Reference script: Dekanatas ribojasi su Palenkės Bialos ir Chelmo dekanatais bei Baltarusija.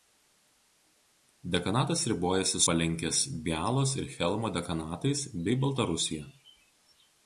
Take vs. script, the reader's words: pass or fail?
fail